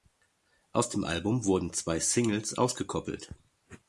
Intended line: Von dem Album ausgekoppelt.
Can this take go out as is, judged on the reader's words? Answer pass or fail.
fail